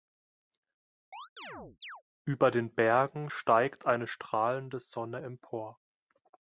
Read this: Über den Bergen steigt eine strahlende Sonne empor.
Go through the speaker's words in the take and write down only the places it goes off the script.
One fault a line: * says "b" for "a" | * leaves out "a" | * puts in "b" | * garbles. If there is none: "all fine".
all fine